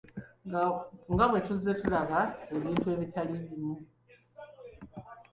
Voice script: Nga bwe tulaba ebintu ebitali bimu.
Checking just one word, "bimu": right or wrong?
right